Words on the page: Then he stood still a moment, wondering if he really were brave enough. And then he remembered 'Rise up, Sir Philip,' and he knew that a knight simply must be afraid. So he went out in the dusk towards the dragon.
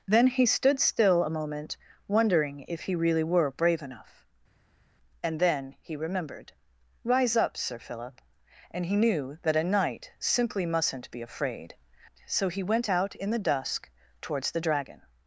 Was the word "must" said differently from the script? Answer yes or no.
yes